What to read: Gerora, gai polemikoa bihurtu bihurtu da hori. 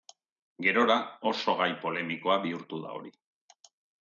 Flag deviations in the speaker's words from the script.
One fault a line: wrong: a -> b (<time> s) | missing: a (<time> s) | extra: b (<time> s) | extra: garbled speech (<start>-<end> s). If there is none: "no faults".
extra: oso (1.3 s)
missing: bihurtu (2.8 s)